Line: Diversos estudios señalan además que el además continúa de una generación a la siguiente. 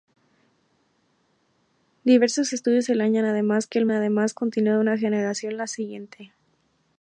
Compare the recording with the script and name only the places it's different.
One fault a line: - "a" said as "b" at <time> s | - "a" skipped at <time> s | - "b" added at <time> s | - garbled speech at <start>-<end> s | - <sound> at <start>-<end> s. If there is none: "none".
none